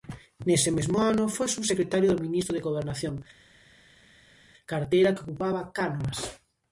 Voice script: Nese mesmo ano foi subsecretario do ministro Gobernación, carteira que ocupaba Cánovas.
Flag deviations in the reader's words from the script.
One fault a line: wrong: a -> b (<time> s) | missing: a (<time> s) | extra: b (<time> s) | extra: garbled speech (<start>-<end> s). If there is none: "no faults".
extra: de (2.5 s)